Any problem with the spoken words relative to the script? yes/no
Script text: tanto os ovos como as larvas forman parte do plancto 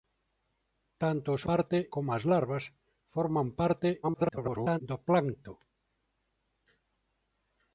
yes